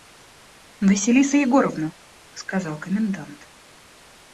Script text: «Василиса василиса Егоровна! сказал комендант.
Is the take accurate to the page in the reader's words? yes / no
no